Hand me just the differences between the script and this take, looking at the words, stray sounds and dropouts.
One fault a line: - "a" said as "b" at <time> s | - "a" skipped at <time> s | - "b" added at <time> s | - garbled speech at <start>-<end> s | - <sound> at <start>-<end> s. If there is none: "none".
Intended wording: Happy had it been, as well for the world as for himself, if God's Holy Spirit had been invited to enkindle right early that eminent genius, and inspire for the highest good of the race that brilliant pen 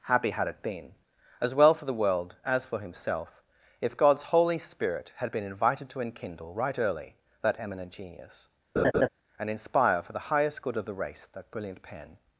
- laugh at 8.8-9.1 s